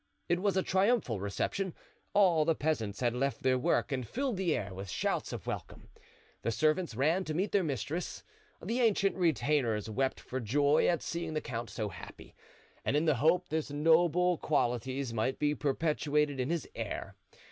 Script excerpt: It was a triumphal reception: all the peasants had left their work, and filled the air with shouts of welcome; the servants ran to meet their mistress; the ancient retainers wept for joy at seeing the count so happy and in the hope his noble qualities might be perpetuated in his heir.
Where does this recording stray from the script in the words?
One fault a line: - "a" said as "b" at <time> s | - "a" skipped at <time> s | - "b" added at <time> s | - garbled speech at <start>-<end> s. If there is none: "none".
none